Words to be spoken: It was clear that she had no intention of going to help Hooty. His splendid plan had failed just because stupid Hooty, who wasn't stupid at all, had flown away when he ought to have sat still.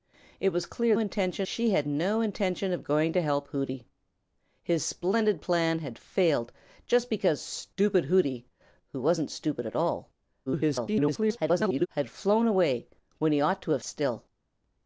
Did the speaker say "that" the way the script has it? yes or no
no